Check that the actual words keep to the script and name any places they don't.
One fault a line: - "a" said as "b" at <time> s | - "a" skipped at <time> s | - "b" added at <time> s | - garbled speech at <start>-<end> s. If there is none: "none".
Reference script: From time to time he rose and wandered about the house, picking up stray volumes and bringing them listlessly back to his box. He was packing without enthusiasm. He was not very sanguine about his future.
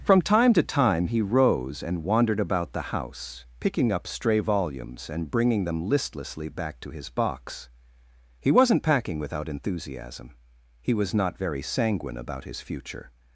- "was" said as "wasn't" at 8.5 s